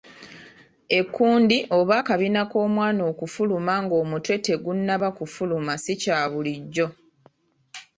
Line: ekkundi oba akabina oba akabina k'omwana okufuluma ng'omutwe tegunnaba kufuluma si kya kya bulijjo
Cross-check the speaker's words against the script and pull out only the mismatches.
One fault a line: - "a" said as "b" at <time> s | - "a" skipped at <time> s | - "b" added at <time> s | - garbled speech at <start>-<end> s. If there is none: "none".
- "oba akabina" skipped at 2.4 s
- "kya" skipped at 6.2 s